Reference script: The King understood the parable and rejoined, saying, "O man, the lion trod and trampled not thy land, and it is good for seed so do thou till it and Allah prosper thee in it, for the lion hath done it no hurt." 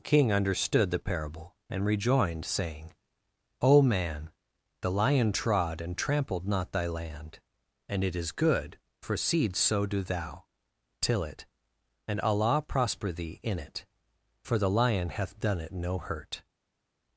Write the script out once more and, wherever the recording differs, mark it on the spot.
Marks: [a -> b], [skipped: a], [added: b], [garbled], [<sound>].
[skipped: The] King understood the parable and rejoined, saying, "O man, the lion trod and trampled not thy land, and it is good for seed so do thou till it and Allah prosper thee in it, for the lion hath done it no hurt."